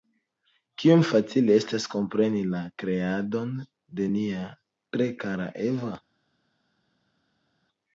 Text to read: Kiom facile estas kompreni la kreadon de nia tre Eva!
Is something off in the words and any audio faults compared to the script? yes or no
yes